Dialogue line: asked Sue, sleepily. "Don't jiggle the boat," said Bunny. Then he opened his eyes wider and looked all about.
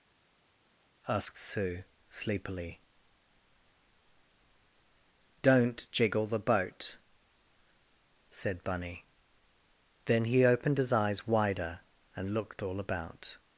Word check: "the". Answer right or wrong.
right